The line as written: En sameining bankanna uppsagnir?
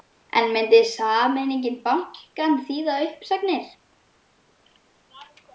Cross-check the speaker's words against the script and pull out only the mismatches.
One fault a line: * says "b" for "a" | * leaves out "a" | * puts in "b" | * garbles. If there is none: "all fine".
* puts in "myndi"
* puts in "þýða"